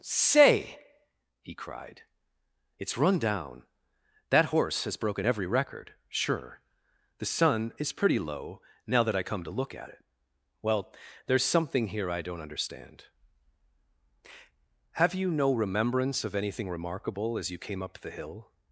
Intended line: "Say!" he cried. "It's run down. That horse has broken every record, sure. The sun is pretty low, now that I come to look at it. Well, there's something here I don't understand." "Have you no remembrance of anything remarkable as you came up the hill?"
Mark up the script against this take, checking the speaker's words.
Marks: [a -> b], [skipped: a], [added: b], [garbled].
"Say!" he cried. "It's run down. That horse has broken every record, sure. The sun is pretty low, now that I come to look at it. Well, there's something here I don't understand." "Have you no remembrance of anything remarkable as you came up the hill?"